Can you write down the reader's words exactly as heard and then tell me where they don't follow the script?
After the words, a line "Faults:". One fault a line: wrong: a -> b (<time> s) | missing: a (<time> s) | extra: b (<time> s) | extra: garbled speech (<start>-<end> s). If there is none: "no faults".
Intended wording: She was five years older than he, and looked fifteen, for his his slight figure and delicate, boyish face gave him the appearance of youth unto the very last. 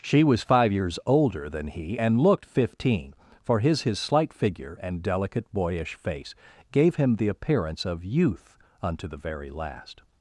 She was five years older than he, and looked fifteen, for his his slight figure and delicate, boyish face gave him the appearance of youth unto the very last.
Faults:
no faults